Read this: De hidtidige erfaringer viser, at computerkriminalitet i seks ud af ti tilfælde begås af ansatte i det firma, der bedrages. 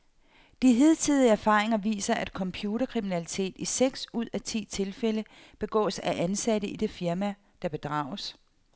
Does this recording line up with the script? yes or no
yes